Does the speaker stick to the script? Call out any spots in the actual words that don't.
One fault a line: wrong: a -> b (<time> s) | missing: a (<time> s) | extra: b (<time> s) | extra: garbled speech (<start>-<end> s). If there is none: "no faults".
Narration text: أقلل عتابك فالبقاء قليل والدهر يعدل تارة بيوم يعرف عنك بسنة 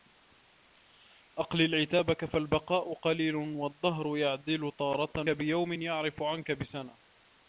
no faults